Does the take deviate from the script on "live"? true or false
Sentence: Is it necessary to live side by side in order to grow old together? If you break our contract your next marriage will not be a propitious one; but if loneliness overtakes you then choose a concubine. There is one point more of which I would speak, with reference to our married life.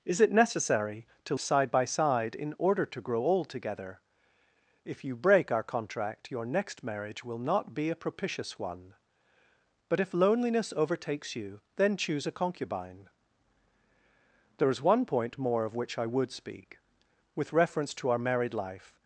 true